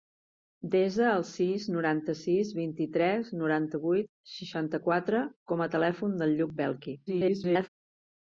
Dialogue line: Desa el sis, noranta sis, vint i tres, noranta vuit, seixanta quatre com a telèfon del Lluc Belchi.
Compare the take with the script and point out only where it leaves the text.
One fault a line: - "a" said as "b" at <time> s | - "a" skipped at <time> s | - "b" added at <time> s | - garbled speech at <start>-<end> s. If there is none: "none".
- garbled speech at 7.1-7.7 s